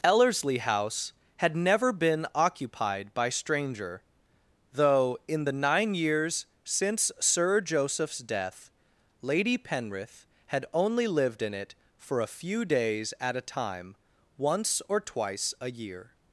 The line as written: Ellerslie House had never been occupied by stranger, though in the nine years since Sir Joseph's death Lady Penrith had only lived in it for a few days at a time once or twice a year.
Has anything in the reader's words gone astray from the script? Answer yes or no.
no